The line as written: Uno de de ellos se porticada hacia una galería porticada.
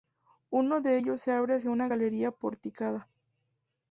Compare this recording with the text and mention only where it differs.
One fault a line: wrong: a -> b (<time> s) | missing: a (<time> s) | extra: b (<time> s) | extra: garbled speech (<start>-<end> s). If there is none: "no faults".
missing: de (1.0 s)
wrong: porticada -> abre (1.3 s)